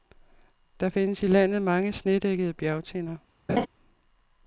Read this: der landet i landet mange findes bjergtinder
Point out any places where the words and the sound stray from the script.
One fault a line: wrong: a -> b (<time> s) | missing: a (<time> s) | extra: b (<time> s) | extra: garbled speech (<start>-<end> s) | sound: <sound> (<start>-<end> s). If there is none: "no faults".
wrong: landet -> findes (0.9 s)
wrong: findes -> snedækkede (1.9 s)
sound: laugh (3.5-3.7 s)